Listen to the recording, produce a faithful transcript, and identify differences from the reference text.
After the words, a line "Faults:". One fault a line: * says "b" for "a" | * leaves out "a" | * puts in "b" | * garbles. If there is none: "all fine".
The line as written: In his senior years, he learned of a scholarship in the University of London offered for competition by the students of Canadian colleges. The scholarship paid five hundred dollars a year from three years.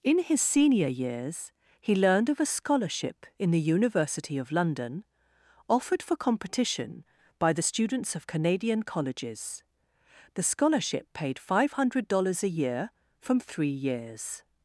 In his senior years, he learned of a scholarship in the University of London offered for competition by the students of Canadian colleges. The scholarship paid five hundred dollars a year from three years.
Faults:
all fine